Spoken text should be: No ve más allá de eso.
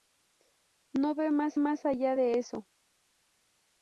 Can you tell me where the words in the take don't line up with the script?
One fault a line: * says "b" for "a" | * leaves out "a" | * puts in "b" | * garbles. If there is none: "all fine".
* puts in "más"